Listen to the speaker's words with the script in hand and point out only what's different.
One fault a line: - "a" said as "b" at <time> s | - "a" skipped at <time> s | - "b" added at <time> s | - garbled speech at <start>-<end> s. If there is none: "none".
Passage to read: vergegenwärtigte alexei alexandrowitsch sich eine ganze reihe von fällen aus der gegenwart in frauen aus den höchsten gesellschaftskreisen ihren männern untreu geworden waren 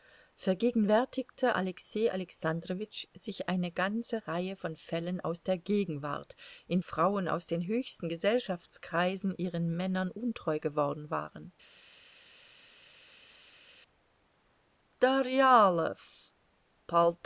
none